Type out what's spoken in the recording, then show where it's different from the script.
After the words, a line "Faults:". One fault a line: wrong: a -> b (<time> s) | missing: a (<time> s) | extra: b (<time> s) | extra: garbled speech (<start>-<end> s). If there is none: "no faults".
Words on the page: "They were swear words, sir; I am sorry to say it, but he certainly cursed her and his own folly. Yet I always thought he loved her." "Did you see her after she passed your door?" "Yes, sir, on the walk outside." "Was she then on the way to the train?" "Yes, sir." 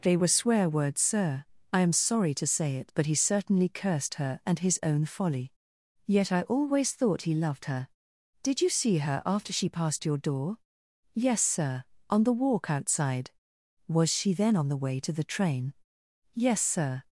"They were swear words, sir; I am sorry to say it, but he certainly cursed her and his own folly. Yet I always thought he loved her." "Did you see her after she passed your door?" "Yes, sir, on the walk outside." "Was she then on the way to the train?" "Yes, sir."
Faults:
no faults